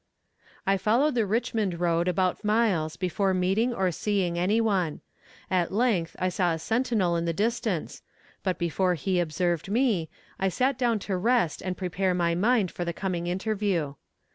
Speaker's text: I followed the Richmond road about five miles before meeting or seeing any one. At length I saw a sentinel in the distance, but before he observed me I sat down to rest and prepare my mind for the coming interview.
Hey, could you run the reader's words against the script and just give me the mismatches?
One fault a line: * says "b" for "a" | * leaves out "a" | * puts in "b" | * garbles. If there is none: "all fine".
* leaves out "five"